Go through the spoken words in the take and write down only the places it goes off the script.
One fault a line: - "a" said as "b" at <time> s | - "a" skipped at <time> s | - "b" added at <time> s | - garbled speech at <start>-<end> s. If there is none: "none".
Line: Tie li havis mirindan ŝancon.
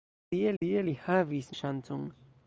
- "tie" added at 0.6 s
- "mirindan" skipped at 1.5 s